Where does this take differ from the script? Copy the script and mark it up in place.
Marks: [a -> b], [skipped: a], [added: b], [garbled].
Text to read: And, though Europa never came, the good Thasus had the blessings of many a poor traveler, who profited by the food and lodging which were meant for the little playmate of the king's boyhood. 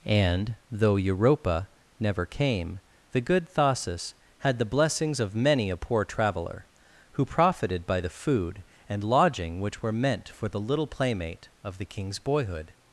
And, though Europa never came, the good Thasus had the blessings of many a poor traveler, who profited by the food and lodging which were meant for the little playmate of the king's boyhood.